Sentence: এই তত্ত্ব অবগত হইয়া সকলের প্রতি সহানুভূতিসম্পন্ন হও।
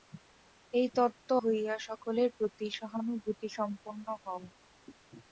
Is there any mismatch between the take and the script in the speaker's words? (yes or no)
yes